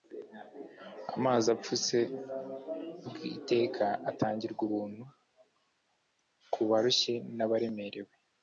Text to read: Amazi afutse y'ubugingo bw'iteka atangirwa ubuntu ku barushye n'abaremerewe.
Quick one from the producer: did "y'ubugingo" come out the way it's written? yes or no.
no